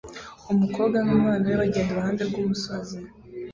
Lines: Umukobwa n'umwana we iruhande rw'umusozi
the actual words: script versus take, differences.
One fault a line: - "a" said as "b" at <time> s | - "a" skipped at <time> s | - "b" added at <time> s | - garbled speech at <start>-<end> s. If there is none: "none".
- "bagenda" added at 1.6 s